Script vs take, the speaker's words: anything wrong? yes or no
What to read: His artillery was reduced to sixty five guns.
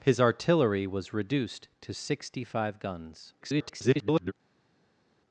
yes